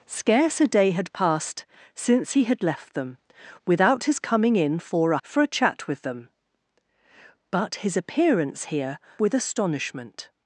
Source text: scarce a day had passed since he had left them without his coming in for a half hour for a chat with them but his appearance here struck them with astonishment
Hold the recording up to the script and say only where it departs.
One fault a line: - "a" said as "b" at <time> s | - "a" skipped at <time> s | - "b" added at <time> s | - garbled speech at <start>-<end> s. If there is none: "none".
- "half hour" skipped at 5.2 s
- "struck them" skipped at 9.0 s